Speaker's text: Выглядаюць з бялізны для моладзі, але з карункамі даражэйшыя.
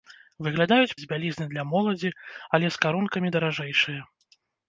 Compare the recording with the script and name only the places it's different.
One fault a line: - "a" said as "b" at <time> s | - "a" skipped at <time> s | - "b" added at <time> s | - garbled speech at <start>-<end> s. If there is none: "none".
none